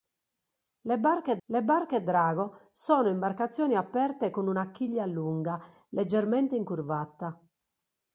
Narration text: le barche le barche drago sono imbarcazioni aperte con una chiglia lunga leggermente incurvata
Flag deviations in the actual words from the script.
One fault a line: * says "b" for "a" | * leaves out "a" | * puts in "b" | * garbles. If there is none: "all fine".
all fine